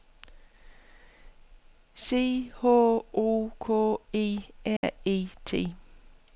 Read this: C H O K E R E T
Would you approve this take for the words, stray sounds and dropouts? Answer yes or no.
no